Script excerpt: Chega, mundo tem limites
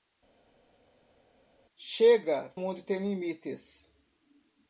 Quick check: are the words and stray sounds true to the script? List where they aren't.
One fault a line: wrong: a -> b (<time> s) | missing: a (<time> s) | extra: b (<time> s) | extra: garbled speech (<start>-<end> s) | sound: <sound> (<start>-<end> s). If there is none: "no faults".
no faults